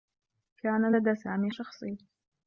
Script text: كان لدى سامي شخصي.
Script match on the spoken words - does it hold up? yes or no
yes